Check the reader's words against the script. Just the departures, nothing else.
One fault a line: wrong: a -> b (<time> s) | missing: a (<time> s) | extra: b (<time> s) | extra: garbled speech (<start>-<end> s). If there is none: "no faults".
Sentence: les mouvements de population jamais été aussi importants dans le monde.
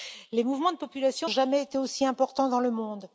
no faults